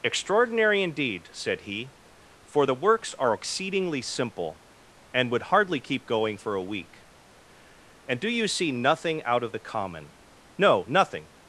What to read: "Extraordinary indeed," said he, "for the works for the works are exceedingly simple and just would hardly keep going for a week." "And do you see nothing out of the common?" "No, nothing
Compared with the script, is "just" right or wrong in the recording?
wrong